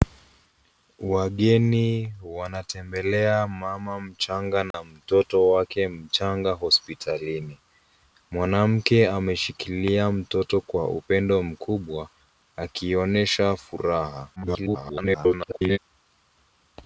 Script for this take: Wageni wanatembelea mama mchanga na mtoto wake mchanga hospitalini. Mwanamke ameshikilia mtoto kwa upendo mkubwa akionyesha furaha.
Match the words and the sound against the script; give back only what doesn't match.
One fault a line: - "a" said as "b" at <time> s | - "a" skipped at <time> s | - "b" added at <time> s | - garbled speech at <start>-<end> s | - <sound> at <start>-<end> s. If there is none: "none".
- dropout at 4.7-4.7 s
- garbled speech at 14.4-15.8 s